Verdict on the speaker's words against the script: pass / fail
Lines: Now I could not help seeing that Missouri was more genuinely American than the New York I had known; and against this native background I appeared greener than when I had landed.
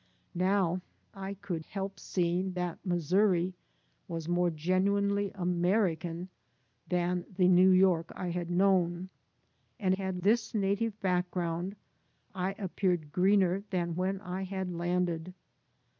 fail